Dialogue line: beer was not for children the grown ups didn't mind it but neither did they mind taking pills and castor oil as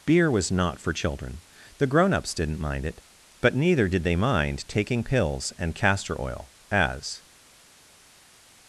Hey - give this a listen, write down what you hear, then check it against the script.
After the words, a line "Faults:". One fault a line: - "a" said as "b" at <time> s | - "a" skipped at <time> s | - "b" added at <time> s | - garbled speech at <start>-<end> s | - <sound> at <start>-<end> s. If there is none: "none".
beer was not for children the grown ups didn't mind it but neither did they mind taking pills and castor oil as
Faults:
none